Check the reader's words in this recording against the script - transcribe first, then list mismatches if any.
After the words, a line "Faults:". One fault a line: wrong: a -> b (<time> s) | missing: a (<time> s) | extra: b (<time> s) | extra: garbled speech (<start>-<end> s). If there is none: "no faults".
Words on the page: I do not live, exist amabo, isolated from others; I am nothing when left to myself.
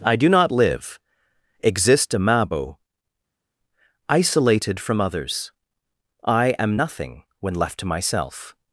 I do not live, exist amabo, isolated from others; I am nothing when left to myself.
Faults:
no faults